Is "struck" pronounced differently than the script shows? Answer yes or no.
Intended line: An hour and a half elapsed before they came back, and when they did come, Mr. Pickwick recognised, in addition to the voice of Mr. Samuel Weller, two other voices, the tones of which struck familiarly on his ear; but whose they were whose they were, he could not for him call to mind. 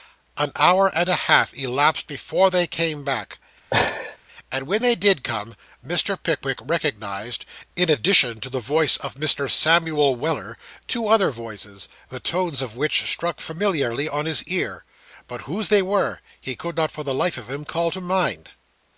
no